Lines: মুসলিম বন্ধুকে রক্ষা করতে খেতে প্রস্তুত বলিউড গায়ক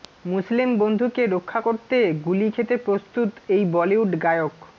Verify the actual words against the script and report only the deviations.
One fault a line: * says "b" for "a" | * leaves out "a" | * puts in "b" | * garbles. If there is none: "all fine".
* puts in "গুলি"
* puts in "এই"